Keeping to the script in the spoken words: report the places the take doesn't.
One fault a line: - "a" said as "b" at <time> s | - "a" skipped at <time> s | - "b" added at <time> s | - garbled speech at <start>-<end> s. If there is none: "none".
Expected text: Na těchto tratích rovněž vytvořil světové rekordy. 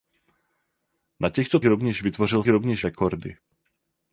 - "tratích" skipped at 1.6 s
- "světové" said as "rovněž" at 2.5 s